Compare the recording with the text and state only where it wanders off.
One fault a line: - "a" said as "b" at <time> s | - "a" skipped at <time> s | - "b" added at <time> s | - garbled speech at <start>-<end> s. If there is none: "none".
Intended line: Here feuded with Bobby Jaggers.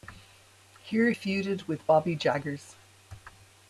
none